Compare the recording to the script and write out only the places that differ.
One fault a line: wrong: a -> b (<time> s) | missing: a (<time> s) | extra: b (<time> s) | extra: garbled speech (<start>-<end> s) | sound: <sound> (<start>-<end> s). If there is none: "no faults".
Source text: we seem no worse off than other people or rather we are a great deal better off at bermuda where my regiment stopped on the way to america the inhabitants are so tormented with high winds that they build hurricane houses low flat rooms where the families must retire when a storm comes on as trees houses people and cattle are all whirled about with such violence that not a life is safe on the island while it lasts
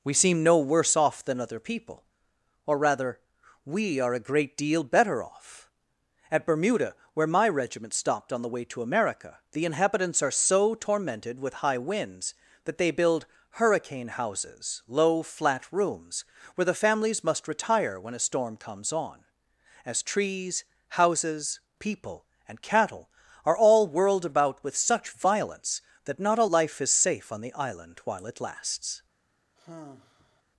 sound: sigh (29.6-30.4 s)